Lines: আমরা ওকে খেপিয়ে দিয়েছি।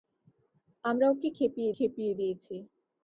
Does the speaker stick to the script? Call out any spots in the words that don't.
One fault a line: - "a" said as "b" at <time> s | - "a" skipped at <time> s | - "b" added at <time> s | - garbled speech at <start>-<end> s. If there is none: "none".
- "খেপিয়ে" added at 1.8 s